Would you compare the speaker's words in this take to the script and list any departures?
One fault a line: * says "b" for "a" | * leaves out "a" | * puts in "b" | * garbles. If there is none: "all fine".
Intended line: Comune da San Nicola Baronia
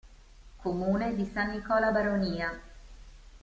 * says "di" for "da"